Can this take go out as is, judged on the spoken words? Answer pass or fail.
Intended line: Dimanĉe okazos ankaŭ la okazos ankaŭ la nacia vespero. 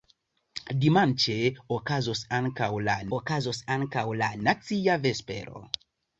pass